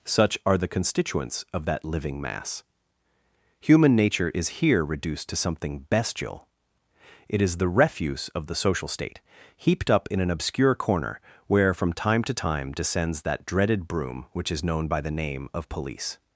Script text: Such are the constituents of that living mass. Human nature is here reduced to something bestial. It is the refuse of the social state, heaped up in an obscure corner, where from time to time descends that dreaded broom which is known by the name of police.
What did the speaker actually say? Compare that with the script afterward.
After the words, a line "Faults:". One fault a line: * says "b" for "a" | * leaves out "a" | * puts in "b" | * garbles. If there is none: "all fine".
Such are the constituents of that living mass. Human nature is here reduced to something bestial. It is the refuse of the social state, heaped up in an obscure corner, where from time to time descends that dreaded broom which is known by the name of police.
Faults:
all fine